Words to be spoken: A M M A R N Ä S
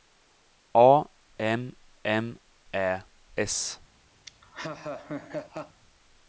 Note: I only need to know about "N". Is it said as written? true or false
false